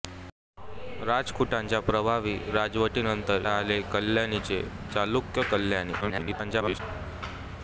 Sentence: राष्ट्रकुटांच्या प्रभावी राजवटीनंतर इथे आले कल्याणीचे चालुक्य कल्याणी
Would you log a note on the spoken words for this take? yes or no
yes